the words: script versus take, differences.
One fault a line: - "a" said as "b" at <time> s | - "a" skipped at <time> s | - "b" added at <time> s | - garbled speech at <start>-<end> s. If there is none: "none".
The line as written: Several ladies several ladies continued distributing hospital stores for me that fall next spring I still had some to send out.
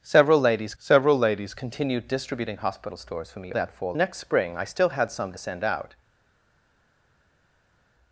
none